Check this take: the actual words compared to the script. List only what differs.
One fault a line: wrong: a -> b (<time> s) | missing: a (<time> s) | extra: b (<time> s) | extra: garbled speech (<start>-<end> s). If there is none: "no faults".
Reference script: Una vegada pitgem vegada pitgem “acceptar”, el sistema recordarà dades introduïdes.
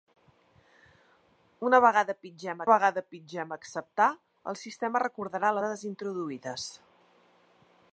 no faults